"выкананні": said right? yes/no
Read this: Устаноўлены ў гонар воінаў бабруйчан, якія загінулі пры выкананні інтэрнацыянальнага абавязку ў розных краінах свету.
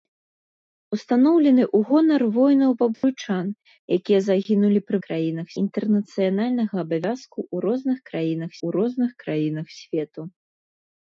no